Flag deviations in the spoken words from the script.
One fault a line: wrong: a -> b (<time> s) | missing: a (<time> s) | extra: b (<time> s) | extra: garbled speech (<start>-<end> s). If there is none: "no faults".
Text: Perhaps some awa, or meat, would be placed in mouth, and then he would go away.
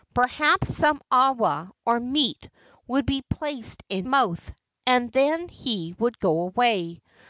no faults